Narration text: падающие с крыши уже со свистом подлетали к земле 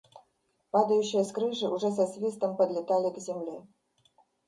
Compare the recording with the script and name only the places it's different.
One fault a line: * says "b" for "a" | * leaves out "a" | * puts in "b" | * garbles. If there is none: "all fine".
all fine